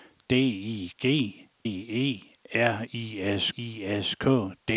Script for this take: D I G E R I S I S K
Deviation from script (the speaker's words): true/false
false